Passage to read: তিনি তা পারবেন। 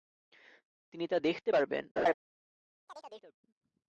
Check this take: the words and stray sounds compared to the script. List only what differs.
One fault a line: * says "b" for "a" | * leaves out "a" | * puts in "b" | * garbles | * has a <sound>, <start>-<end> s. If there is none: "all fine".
* puts in "দেখতে"
* has a laugh, 2.0-2.1 s
* has a chirp, 2.9-3.4 s